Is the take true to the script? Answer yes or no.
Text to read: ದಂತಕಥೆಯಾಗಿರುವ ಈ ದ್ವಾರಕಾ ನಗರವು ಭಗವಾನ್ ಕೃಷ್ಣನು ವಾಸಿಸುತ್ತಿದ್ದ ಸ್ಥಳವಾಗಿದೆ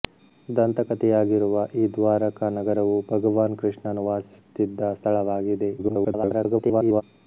no